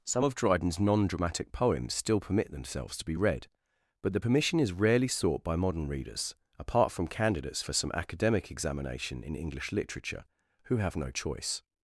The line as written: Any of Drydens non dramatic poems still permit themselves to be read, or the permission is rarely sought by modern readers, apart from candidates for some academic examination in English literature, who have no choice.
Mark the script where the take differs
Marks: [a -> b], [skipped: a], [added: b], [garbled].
[Any -> Some] of Drydens non dramatic poems still permit themselves to be read, [or -> but] the permission is rarely sought by modern readers, apart from candidates for some academic examination in English literature, who have no choice.